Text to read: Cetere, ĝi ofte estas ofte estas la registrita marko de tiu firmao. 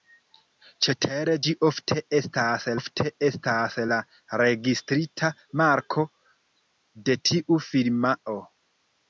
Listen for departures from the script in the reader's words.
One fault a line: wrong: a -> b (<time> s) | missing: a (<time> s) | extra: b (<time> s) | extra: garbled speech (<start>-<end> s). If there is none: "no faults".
no faults